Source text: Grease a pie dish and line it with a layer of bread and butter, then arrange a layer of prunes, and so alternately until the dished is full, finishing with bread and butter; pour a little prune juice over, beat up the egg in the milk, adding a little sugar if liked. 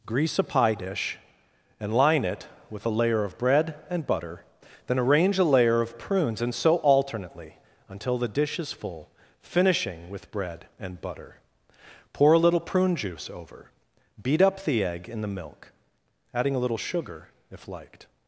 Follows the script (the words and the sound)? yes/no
no